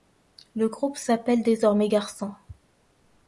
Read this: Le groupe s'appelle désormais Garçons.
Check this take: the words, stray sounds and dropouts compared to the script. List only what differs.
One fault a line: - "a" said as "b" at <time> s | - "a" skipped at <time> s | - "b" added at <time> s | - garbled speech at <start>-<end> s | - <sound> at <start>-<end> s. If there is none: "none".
none